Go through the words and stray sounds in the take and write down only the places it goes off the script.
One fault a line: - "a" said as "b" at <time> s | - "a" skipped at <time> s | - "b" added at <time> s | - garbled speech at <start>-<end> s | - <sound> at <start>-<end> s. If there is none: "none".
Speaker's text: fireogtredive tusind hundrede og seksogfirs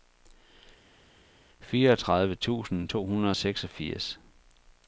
- "to" added at 2.9 s